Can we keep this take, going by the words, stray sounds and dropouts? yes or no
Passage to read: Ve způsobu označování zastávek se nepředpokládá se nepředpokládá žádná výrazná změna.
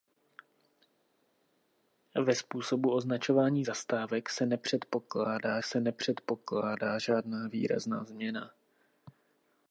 yes